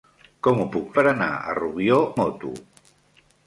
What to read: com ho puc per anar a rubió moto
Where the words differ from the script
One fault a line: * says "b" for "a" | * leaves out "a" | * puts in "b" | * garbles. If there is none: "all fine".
all fine